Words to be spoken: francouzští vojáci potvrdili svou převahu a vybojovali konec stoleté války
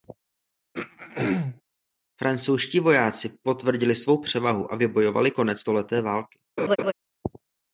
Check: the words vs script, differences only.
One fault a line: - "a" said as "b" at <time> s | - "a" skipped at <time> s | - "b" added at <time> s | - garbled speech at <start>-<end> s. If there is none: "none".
none